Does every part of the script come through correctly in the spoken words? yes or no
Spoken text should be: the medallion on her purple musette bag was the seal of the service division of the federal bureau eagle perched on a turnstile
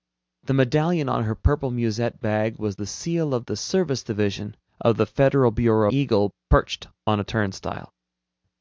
yes